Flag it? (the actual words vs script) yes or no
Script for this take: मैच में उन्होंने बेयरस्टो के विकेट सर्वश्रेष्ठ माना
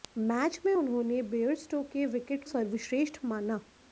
no